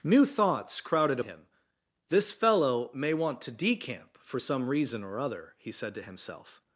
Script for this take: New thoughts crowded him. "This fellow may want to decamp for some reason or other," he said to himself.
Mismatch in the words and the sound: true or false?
false